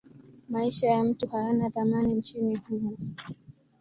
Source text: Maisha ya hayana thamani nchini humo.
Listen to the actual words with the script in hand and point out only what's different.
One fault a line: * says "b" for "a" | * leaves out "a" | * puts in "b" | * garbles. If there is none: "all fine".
* puts in "mtu"